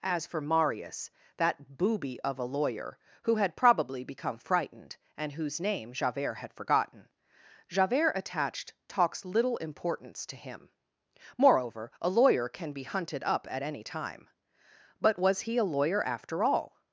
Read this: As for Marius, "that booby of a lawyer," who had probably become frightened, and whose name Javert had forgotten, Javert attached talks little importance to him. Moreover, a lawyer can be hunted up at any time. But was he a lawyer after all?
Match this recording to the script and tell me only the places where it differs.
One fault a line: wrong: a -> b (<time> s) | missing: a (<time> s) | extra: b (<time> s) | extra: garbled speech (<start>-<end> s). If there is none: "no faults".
no faults